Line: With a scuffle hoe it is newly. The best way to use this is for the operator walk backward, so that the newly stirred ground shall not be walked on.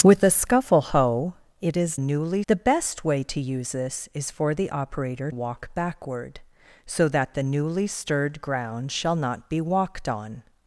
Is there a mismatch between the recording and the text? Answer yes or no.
no